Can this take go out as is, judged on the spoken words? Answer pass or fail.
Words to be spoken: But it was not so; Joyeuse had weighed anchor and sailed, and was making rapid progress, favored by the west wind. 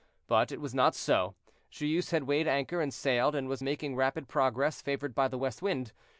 pass